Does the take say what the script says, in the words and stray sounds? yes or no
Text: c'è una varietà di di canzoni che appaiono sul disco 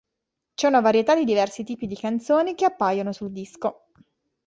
no